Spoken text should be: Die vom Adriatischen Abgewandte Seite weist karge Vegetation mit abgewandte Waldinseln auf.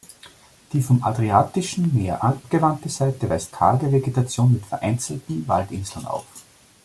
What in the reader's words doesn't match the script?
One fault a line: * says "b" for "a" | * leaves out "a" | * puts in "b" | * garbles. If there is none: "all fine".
* puts in "Meer"
* says "vereinzelten" for "abgewandte"